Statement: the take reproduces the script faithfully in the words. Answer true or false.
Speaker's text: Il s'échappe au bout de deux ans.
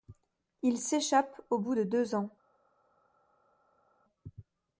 true